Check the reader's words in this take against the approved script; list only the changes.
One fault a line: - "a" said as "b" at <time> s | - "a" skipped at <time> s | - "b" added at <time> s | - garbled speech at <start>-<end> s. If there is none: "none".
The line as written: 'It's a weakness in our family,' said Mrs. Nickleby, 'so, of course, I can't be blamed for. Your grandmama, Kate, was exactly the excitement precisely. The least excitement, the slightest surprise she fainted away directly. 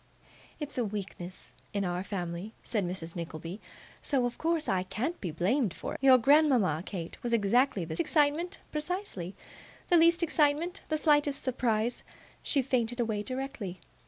none